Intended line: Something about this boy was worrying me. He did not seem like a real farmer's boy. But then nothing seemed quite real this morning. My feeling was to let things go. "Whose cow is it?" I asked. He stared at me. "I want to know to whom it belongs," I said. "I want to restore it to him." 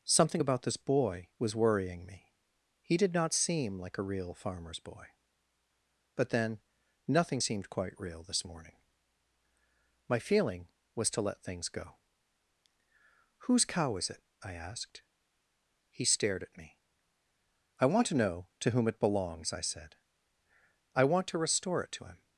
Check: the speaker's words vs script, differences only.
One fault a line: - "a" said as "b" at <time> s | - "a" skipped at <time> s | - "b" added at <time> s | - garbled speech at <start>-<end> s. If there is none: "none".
none